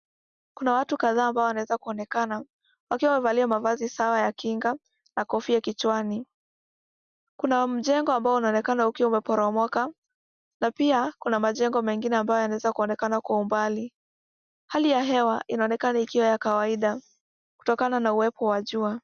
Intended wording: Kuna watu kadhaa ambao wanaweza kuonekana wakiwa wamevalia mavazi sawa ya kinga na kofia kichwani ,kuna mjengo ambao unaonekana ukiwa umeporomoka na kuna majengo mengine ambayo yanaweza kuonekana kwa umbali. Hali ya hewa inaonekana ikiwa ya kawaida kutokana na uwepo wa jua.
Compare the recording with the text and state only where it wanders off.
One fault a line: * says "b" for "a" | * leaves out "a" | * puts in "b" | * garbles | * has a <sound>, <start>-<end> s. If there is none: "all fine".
* puts in "pia"